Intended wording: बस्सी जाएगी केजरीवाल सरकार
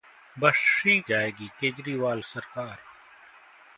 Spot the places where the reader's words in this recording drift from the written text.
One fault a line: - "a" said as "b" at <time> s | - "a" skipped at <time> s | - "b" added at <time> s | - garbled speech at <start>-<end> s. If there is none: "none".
none